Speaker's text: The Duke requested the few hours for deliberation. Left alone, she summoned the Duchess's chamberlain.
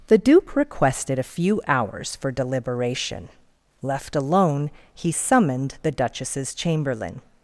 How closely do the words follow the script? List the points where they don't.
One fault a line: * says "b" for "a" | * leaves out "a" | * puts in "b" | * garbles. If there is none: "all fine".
* says "a" for "the"
* says "he" for "she"